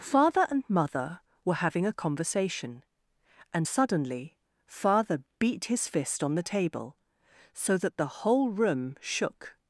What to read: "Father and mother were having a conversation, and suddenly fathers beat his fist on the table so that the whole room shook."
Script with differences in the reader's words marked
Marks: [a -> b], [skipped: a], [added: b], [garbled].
"Father and mother were having a conversation, and suddenly [fathers -> father] beat his fist on the table so that the whole room shook."